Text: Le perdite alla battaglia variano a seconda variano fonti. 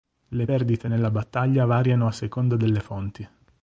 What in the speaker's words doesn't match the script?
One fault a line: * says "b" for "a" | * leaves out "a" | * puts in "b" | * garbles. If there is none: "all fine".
* says "nella" for "alla"
* says "delle" for "variano"